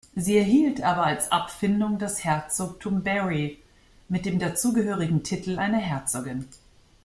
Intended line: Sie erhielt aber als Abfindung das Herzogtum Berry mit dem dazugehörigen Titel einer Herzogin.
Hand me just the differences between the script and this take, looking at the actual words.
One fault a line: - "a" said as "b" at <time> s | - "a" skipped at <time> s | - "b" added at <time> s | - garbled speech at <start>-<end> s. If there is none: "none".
none